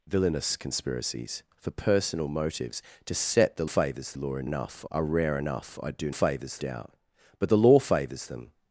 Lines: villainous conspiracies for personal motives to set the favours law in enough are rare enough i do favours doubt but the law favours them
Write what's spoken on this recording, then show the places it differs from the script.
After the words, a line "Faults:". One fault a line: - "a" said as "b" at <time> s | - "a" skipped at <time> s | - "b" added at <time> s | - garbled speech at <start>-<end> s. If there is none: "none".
villainous conspiracies for personal motives to set the favours law in enough are rare enough i do favours doubt but the law favours them
Faults:
none